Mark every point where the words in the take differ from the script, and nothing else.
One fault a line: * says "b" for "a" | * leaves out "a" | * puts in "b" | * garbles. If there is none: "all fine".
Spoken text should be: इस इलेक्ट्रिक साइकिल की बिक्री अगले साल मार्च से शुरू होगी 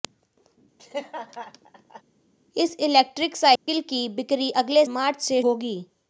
* leaves out "साल"
* leaves out "शुरू"